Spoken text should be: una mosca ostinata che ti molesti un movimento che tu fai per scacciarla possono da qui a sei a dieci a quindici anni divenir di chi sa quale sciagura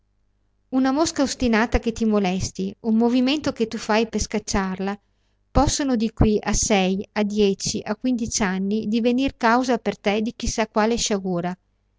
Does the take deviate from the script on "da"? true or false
true